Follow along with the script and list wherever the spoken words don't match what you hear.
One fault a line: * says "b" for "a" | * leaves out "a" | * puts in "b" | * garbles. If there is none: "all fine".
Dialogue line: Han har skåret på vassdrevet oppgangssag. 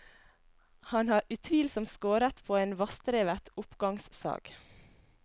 * puts in "utvilsomt"
* puts in "en"